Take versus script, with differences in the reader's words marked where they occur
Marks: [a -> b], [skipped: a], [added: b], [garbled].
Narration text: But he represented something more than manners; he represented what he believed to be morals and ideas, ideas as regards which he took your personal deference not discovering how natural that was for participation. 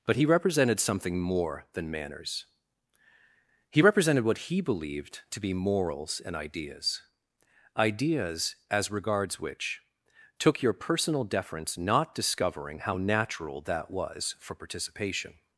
But he represented something more than manners; he represented what he believed to be morals and ideas, ideas as regards which [skipped: he] took your personal deference not discovering how natural that was for participation.